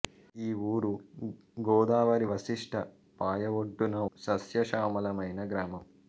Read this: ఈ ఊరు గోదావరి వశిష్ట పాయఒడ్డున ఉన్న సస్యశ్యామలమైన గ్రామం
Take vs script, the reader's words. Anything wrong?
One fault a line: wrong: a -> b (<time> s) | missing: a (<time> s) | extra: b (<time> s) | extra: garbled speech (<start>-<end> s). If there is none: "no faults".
missing: ఉన్న (4.0 s)